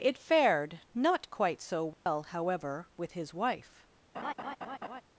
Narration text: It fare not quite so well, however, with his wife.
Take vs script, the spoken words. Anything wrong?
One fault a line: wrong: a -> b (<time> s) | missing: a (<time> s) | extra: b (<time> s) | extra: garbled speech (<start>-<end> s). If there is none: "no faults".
wrong: fare -> fared (0.2 s)